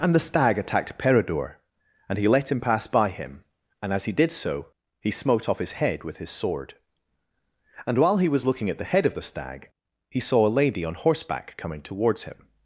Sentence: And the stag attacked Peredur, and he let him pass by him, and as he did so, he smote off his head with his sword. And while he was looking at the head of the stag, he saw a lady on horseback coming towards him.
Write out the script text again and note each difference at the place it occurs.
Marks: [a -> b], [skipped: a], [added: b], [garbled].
And the stag attacked Peredur, and he let him pass by him, and as he did so, he smote off his head with his sword. And while he was looking at the head of the stag, he saw a lady on horseback coming towards him.